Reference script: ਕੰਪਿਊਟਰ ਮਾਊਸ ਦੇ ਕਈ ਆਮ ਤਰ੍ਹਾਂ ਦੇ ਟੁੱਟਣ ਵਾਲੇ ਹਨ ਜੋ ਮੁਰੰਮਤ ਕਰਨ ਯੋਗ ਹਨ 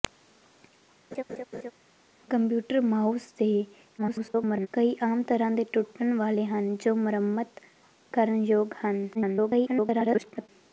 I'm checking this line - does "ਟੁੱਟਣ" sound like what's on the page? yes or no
yes